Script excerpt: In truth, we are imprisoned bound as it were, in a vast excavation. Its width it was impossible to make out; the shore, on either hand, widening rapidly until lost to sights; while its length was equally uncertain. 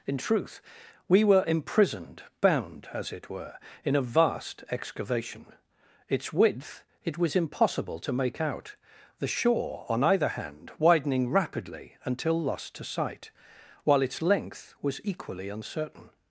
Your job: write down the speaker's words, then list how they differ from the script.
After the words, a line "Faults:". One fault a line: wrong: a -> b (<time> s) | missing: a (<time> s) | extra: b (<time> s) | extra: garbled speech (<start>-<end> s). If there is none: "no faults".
In truth, we were imprisoned bound as it were, in a vast excavation. Its width it was impossible to make out; the shore, on either hand, widening rapidly until lost to sight; while its length was equally uncertain.
Faults:
wrong: are -> were (1.2 s)
wrong: sights -> sight (12.8 s)